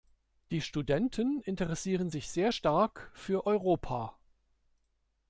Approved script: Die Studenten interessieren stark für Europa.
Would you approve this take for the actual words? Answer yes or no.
no